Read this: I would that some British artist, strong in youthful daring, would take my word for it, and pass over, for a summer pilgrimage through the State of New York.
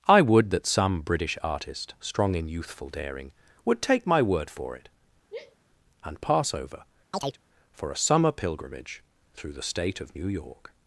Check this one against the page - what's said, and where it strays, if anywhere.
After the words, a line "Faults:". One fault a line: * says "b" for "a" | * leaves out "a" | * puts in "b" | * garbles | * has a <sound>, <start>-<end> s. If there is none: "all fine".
I would that some British artist, strong in youthful daring, would take my word for it, and pass over, for a summer pilgrimage through the State of New York.
Faults:
* has a sigh, 5.3-5.6 s
* has a chirp, 7.1-7.4 s